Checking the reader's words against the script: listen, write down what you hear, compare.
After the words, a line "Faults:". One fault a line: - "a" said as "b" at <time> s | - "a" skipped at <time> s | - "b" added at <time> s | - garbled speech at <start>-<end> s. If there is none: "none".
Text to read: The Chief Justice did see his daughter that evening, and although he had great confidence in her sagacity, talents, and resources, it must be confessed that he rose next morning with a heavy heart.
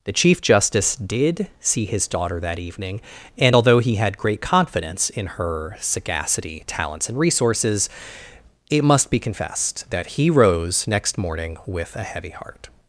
The Chief Justice did see his daughter that evening, and although he had great confidence in her sagacity, talents, and resources, it must be confessed that he rose next morning with a heavy heart.
Faults:
none